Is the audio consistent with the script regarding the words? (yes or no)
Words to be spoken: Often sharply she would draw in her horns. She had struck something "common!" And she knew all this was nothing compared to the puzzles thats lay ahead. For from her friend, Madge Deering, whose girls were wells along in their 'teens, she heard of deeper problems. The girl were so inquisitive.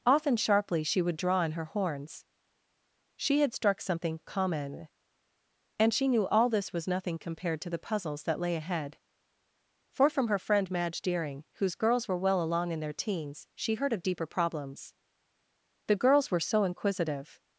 no